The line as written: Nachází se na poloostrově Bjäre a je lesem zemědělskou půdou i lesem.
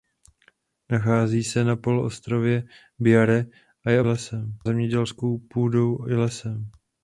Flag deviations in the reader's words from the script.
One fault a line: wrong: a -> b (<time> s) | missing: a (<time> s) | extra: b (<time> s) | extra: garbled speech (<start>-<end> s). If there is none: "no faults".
no faults